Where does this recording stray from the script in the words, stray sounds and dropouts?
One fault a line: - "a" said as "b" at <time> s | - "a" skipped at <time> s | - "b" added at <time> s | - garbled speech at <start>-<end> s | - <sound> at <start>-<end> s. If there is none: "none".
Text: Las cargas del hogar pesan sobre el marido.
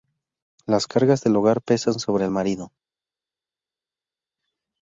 none